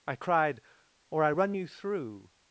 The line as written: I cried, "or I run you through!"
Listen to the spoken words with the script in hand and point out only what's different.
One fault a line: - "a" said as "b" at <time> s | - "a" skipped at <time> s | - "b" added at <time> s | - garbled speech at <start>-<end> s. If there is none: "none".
none